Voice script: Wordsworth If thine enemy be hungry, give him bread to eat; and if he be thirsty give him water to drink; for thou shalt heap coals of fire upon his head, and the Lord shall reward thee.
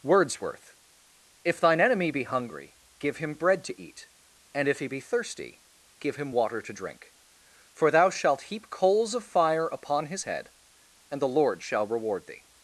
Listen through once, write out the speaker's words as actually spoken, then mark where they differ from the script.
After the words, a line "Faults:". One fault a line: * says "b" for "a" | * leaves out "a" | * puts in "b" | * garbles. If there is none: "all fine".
Wordsworth If thine enemy be hungry, give him bread to eat; and if he be thirsty give him water to drink; for thou shalt heap coals of fire upon his head, and the Lord shall reward thee.
Faults:
all fine